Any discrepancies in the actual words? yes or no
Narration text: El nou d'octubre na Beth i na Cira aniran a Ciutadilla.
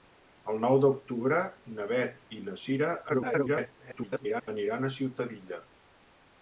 yes